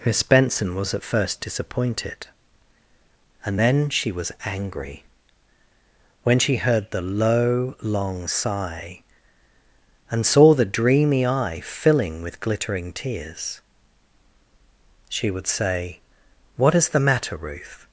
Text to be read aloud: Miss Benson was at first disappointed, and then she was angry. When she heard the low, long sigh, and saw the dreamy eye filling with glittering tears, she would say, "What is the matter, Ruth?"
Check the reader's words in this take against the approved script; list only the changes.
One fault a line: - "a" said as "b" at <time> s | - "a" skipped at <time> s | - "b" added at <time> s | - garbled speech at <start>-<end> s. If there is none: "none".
none